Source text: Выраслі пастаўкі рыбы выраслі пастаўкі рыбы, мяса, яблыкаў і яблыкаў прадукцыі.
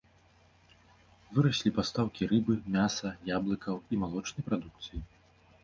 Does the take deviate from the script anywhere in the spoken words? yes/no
yes